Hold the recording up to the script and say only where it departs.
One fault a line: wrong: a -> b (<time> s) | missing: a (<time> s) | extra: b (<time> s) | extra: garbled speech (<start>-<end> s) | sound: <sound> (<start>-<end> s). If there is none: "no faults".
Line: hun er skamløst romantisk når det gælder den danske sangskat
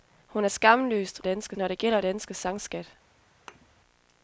wrong: romantisk -> danske (1.2 s)
missing: den (2.0 s)
sound: thud (3.5-3.7 s)